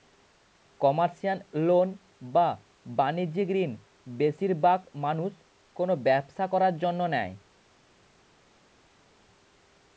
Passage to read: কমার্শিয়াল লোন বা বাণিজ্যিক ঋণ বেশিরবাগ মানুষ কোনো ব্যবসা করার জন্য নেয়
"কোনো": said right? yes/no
yes